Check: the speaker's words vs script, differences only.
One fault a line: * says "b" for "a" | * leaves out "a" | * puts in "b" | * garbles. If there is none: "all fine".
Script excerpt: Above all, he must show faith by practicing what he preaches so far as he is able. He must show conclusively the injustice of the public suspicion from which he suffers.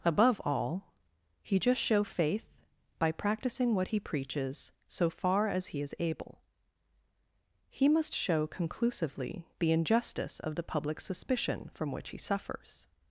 * says "just" for "must"